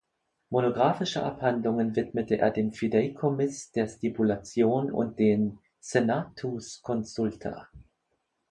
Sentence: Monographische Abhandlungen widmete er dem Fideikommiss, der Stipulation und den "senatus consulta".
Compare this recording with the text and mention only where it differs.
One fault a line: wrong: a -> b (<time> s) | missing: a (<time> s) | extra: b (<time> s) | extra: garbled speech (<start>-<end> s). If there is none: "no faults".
no faults